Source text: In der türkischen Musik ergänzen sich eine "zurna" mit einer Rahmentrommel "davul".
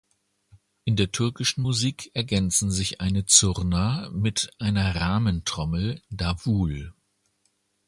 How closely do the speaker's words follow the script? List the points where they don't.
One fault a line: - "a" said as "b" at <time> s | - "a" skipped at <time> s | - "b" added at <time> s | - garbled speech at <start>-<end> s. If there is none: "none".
none